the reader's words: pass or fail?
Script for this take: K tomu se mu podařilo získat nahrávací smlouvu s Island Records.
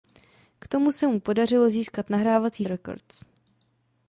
fail